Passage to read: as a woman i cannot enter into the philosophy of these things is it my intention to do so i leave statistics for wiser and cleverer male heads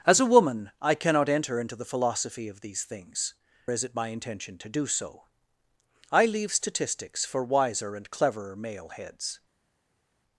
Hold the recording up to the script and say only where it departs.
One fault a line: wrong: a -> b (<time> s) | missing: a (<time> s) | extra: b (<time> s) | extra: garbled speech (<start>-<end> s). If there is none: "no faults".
no faults